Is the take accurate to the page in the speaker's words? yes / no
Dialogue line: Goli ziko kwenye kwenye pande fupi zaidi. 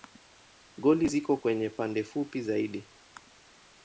no